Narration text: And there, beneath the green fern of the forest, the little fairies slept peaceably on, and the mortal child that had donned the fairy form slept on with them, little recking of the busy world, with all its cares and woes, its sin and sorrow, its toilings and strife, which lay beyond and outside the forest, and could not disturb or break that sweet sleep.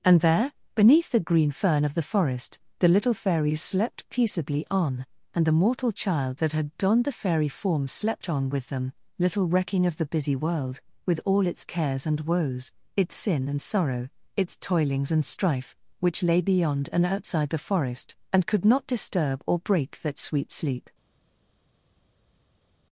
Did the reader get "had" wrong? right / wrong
right